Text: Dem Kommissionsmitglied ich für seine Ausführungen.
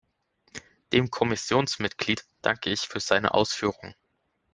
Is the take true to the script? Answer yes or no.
no